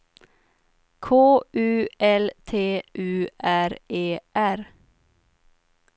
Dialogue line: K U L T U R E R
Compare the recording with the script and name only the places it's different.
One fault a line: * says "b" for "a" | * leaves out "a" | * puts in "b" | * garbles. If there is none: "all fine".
all fine